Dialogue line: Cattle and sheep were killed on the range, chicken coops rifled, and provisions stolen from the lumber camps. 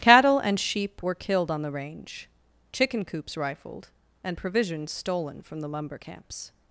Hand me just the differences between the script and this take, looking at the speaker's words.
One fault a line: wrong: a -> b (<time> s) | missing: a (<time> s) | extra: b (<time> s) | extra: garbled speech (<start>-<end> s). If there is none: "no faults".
no faults